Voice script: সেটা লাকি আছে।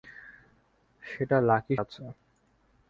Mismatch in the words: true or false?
false